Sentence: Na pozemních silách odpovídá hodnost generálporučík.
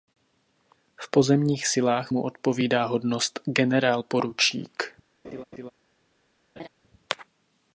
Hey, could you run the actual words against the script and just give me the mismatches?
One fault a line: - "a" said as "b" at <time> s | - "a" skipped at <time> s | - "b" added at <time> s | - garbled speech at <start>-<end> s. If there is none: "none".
- "Na" said as "V" at 0.9 s
- "mu" added at 2.1 s